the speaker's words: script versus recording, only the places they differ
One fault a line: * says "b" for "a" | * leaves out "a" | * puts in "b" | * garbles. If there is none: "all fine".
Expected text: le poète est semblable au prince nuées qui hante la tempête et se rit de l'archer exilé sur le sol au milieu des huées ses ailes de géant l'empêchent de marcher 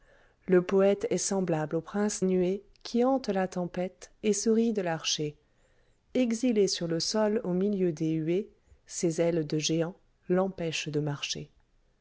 all fine